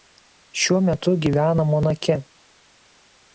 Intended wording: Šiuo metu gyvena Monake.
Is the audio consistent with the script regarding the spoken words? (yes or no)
yes